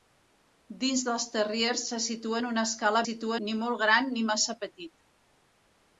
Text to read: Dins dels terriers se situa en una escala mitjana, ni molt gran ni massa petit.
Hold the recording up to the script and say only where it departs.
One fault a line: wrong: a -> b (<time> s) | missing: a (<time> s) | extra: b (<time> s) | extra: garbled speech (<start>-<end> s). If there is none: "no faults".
wrong: mitjana -> situa (3.0 s)